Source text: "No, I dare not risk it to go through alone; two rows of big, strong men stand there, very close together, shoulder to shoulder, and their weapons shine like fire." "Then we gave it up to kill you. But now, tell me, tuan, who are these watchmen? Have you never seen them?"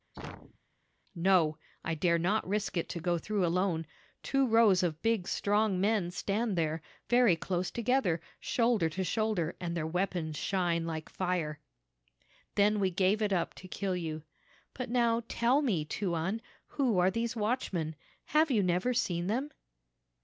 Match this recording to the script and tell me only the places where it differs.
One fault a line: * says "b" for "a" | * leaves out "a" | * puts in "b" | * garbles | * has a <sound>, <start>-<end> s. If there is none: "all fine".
* has a sneeze, 0.1-0.6 s